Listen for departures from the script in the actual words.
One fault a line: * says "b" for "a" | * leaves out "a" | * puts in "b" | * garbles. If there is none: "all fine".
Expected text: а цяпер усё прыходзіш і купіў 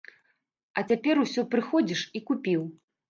all fine